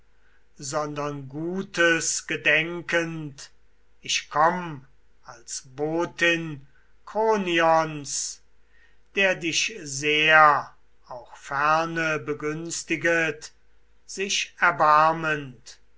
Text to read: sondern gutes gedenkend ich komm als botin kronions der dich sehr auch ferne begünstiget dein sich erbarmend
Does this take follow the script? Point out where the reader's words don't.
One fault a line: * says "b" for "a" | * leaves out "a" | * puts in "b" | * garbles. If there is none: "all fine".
* leaves out "dein"